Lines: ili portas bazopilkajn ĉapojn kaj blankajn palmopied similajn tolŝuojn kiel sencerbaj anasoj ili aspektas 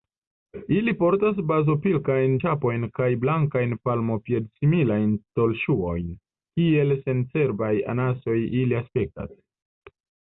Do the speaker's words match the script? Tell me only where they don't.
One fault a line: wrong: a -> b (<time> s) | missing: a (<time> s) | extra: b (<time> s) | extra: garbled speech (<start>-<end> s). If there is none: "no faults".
no faults